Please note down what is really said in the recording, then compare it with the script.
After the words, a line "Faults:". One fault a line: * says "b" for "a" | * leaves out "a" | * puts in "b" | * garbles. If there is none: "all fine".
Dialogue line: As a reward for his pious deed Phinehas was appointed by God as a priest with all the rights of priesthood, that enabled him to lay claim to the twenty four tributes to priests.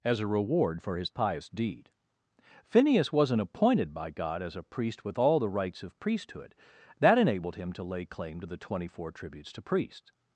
As a reward for his pious deed Phinehas wasn't appointed by God as a priest with all the rights of priesthood, that enabled him to lay claim to the twenty four tributes to priests.
Faults:
* says "wasn't" for "was"